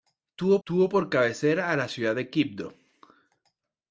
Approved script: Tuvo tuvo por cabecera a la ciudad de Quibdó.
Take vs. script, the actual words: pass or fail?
pass